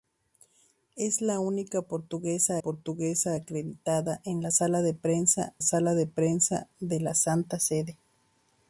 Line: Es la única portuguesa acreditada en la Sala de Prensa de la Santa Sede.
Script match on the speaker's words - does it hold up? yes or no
no